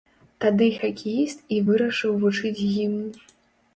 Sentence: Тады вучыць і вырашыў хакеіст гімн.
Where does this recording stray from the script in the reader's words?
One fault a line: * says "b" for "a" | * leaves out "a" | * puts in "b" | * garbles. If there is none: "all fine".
* says "хакеіст" for "вучыць"
* says "вучыць" for "хакеіст"